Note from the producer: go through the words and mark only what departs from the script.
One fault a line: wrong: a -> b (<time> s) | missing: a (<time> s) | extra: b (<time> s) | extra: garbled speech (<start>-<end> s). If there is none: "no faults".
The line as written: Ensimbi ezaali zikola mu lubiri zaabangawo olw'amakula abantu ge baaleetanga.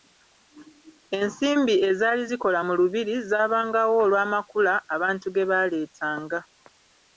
no faults